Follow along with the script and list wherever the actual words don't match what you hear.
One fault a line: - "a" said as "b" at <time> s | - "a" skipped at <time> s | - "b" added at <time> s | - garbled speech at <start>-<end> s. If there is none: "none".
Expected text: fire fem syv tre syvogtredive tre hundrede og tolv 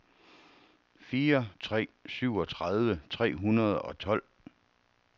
- "fem syv" skipped at 1.5 s